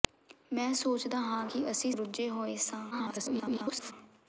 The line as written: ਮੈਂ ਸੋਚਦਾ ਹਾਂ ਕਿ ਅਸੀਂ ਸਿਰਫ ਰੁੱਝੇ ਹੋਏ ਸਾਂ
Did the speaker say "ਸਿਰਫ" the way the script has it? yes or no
no